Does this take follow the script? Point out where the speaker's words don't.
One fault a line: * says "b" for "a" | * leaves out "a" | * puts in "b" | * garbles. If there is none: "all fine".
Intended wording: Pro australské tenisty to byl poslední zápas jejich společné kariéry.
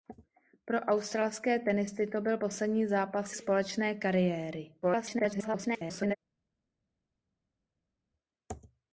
* leaves out "jejich"
* garbles